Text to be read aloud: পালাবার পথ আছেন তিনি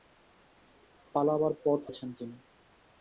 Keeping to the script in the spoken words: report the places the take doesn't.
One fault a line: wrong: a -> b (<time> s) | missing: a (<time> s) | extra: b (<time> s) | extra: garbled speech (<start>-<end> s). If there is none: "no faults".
no faults